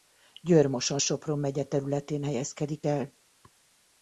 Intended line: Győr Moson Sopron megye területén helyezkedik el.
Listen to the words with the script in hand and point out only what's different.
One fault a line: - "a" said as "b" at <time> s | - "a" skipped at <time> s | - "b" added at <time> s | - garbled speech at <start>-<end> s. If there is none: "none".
none